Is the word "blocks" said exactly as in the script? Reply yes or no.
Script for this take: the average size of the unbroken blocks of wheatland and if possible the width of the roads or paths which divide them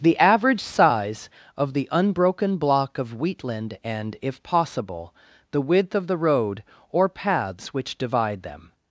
no